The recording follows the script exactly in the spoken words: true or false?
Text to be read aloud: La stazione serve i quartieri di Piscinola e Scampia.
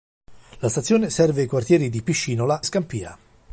false